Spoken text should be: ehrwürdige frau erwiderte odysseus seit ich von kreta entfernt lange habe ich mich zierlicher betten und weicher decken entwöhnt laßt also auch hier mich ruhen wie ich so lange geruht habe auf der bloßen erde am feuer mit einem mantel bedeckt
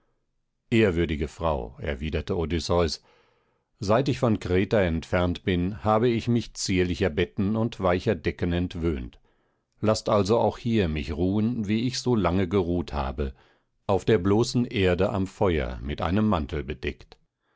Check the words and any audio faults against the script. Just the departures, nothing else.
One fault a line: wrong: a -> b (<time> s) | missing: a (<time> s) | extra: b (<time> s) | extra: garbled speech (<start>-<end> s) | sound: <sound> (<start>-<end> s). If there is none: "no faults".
wrong: lange -> bin (5.4 s)